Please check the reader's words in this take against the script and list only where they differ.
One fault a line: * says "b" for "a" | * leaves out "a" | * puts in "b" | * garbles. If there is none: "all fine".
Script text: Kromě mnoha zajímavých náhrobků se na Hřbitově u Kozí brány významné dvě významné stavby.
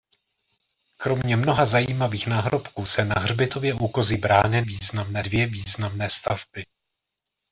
all fine